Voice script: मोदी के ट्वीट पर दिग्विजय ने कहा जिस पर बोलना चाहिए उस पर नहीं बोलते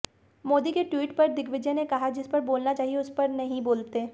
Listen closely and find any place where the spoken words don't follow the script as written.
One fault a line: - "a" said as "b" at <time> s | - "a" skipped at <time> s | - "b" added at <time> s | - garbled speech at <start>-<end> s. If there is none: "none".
none